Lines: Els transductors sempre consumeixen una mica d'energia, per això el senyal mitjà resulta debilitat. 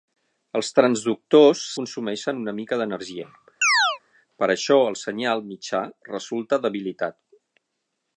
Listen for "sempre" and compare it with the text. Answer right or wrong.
wrong